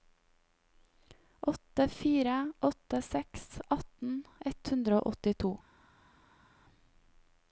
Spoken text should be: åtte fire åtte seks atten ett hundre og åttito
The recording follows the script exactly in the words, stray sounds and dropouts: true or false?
true